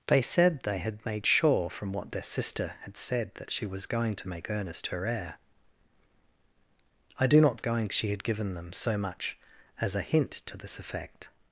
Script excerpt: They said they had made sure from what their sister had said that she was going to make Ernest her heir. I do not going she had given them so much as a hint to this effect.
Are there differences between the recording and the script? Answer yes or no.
no